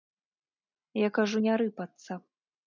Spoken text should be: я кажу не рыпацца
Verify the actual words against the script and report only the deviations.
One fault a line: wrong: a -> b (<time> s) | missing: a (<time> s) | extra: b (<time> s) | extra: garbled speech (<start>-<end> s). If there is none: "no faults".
no faults